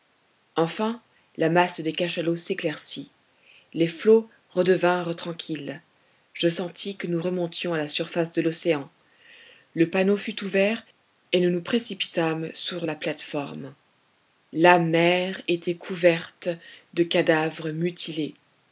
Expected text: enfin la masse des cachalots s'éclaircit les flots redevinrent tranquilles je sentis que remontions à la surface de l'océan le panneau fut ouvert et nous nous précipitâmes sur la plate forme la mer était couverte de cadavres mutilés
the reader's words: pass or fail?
fail